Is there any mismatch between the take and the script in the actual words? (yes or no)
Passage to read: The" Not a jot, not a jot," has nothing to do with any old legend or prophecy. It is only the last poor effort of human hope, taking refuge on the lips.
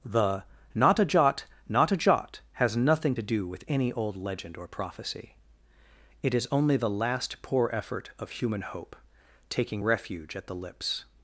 yes